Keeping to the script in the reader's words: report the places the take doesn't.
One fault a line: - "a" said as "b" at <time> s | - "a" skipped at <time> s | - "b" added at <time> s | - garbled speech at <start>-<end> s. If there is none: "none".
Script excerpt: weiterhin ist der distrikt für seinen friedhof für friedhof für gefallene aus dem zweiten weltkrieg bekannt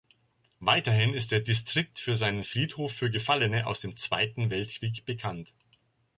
- "friedhof für" skipped at 3.1 s